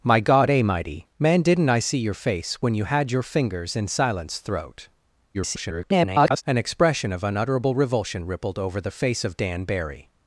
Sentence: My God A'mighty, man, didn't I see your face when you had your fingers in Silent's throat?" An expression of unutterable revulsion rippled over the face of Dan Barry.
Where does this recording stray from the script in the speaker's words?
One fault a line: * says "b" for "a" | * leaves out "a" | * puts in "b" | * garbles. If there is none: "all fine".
* garbles